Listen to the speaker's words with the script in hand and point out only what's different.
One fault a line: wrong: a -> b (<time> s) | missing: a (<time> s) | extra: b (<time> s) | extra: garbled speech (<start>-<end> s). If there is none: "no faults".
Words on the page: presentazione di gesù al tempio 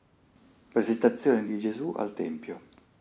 no faults